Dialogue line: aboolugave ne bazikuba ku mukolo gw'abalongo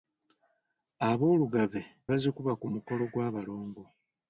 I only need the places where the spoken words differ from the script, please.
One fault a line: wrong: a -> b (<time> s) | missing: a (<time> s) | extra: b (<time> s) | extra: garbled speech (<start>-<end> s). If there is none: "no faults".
missing: ne (1.8 s)